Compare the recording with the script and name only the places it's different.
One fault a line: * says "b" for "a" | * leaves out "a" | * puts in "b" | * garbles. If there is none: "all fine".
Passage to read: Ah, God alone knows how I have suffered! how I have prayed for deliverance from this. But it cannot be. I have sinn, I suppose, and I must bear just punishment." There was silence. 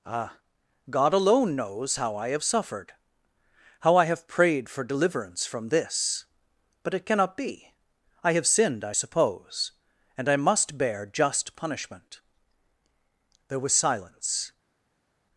* says "sinned" for "sinn"